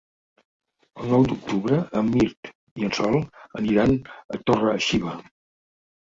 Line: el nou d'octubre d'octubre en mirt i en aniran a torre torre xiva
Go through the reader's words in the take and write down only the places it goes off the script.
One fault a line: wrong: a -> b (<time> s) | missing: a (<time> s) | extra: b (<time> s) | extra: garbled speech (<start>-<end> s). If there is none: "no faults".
missing: d'octubre (1.8 s)
extra: sol (3.0 s)
missing: torre (4.8 s)